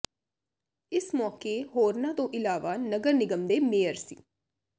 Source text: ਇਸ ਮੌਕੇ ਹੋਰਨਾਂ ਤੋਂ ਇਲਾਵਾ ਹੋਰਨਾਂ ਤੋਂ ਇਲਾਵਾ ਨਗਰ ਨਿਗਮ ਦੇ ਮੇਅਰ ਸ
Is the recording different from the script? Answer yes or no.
yes